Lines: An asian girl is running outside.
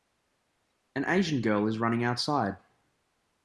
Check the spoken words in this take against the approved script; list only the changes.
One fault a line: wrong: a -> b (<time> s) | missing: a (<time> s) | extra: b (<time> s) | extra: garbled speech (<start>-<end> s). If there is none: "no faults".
no faults